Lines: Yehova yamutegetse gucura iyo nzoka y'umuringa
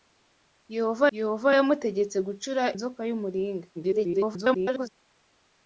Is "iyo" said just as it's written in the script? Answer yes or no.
no